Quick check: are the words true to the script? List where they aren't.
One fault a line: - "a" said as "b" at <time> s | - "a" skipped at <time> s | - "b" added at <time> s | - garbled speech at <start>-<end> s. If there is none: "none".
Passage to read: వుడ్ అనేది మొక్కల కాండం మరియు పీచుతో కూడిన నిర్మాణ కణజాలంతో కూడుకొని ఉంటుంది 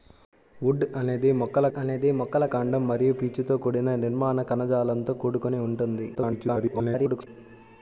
- "అనేది మొక్కల" added at 1.8 s
- garbled speech at 6.1-7.3 s